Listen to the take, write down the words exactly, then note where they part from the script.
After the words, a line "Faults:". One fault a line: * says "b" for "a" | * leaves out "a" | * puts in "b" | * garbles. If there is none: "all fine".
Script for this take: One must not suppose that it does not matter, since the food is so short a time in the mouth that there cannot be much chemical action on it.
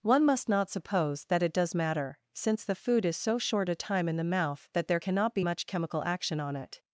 One must not suppose that it does matter, since the food is so short a time in the mouth that there cannot be much chemical action on it.
Faults:
* leaves out "not"